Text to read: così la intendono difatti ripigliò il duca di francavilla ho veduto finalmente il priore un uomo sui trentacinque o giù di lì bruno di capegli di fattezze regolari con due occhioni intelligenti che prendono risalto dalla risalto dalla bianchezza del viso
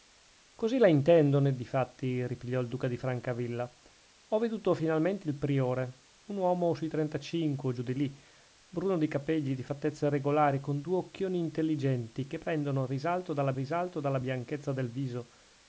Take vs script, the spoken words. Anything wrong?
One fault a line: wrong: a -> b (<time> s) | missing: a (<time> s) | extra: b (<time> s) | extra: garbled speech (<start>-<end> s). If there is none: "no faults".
no faults